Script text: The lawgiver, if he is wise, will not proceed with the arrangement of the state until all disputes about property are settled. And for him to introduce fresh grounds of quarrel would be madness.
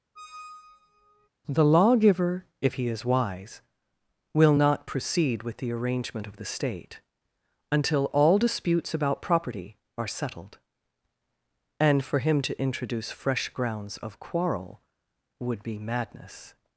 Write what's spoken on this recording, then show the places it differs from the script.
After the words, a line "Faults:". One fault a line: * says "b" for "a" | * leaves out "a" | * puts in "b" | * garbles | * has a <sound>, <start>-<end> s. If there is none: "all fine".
The lawgiver, if he is wise, will not proceed with the arrangement of the state until all disputes about property are settled. And for him to introduce fresh grounds of quarrel would be madness.
Faults:
* has a squeak, 0.2-1.3 s